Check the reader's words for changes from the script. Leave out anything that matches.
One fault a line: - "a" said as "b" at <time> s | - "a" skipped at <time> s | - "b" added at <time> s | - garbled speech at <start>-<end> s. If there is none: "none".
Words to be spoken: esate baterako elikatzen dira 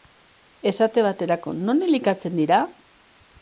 - "non" added at 1.7 s